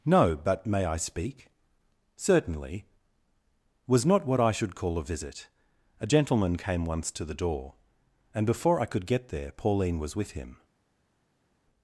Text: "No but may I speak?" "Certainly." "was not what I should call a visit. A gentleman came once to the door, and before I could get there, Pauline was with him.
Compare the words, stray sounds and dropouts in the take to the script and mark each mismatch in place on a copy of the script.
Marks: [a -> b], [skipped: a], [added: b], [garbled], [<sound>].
"No but may I speak?" "Certainly." "was not what I should call a visit. A gentleman came once to the door, and before I could get there, Pauline was with him.